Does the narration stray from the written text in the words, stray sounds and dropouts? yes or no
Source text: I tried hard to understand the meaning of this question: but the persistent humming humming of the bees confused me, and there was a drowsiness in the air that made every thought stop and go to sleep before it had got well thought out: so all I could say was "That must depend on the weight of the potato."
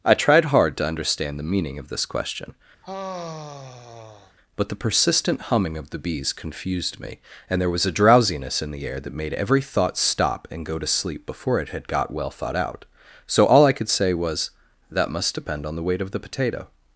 yes